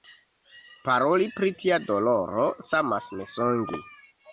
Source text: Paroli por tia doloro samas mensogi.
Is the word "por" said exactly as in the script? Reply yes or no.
no